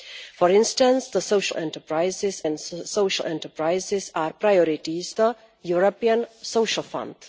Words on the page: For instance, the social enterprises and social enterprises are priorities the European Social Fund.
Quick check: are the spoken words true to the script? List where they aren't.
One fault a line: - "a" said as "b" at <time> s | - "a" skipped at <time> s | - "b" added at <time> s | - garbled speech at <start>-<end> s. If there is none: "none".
none